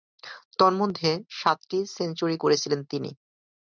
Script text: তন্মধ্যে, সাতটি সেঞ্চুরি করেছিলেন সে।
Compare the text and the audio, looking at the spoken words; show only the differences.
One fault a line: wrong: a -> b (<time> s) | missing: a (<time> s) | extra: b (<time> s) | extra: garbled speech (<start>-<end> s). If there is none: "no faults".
wrong: সে -> তিনি (2.8 s)